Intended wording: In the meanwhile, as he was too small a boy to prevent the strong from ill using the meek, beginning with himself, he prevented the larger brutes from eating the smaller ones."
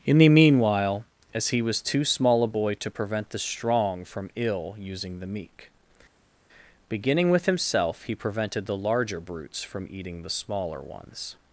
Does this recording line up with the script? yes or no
yes